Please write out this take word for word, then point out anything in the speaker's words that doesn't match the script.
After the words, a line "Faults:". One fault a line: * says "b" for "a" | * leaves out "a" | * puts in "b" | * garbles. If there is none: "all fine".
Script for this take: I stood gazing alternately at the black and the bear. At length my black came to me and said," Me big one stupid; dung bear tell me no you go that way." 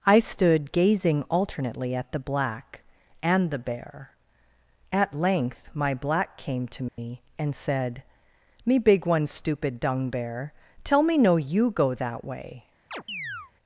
I stood gazing alternately at the black and the bear. At length my black came to me and said," Me big one stupid; dung bear tell me no you go that way."
Faults:
all fine